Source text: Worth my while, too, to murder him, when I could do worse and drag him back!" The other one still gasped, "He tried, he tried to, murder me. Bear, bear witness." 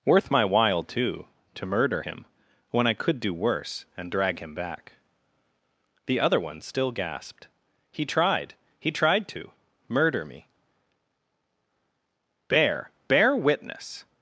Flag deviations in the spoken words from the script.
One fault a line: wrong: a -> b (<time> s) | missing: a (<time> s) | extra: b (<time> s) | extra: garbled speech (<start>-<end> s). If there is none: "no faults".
no faults